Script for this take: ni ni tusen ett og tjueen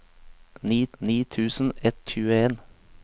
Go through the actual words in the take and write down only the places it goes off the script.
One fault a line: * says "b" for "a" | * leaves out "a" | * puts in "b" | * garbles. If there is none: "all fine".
all fine